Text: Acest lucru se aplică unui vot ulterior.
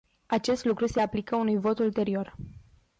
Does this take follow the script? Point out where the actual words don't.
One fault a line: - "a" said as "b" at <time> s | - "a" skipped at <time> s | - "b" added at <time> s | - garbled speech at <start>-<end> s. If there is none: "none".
none